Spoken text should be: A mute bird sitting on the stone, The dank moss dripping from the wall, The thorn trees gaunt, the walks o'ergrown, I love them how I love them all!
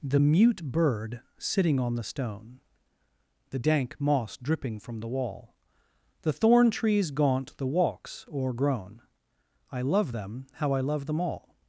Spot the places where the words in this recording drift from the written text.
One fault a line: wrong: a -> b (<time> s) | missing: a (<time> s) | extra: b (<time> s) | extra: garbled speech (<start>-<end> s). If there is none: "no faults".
wrong: A -> The (0.0 s)